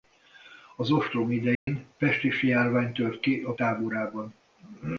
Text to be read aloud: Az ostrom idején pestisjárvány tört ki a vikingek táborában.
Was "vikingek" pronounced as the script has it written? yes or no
no